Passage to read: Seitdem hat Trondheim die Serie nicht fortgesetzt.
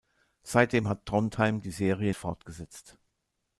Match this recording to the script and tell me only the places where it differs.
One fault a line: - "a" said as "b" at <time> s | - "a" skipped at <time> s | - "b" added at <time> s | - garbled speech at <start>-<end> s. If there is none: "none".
- "nicht" skipped at 2.1 s